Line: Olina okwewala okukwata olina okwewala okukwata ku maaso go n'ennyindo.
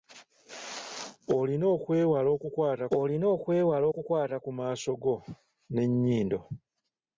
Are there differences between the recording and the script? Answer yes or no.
no